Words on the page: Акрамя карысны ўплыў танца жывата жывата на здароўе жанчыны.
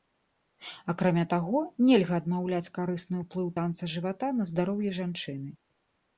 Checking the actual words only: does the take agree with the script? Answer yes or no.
no